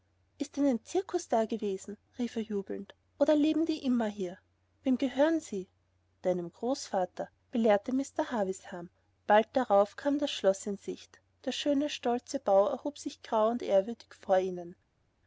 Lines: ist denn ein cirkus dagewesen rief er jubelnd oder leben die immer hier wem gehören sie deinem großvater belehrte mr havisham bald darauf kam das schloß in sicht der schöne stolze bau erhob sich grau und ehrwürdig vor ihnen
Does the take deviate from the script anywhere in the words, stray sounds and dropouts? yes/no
no